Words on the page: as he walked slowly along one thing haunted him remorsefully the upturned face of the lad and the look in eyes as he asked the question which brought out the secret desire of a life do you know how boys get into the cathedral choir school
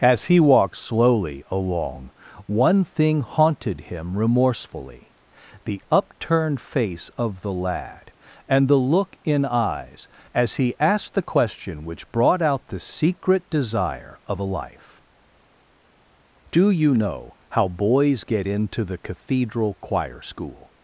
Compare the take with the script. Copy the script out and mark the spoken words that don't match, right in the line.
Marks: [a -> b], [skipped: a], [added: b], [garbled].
as he walked slowly along one thing haunted him remorsefully the upturned face of the lad and the look in eyes as he asked the question which brought out the secret desire of a life do you know how boys get into the cathedral choir school